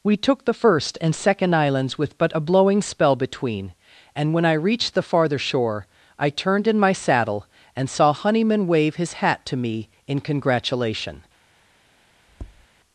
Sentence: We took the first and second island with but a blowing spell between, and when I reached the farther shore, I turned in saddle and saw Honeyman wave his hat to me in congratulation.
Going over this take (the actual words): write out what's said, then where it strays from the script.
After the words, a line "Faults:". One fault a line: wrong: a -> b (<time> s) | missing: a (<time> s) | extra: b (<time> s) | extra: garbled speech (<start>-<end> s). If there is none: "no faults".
We took the first and second islands with but a blowing spell between, and when I reached the farther shore, I turned in my saddle and saw Honeyman wave his hat to me in congratulation.
Faults:
wrong: island -> islands (1.5 s)
extra: my (6.8 s)